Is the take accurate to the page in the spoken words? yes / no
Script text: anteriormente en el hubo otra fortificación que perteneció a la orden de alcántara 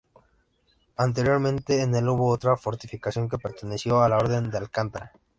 yes